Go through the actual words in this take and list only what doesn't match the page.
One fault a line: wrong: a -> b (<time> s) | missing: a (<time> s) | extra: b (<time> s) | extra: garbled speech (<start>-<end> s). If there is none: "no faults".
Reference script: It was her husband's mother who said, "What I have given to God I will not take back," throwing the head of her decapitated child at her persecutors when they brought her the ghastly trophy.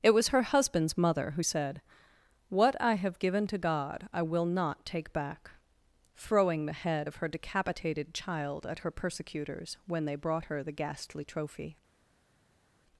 no faults